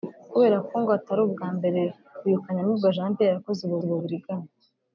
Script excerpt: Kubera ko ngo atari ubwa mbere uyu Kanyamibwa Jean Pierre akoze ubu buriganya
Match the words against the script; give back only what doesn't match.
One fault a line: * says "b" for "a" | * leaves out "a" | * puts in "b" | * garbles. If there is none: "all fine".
* puts in "ubu"